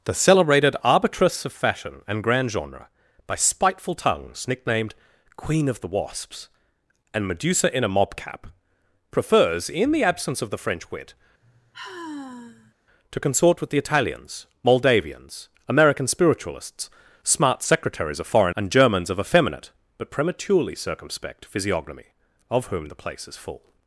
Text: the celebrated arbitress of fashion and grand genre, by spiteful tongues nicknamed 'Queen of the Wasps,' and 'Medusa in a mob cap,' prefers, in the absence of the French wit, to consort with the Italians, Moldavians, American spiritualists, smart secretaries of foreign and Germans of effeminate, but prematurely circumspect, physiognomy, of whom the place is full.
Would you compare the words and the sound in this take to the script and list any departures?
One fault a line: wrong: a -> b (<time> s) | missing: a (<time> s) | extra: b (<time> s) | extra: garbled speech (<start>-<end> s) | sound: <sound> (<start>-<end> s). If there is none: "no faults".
sound: sigh (11.4-12.7 s)